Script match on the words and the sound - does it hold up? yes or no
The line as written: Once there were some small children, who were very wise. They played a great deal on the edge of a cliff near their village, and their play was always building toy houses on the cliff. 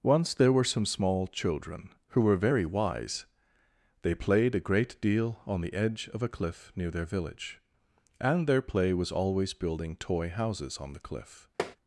no